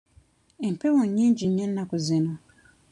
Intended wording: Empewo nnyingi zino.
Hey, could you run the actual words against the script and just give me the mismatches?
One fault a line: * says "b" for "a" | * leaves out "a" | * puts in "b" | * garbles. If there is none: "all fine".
* puts in "nnyo ennaku"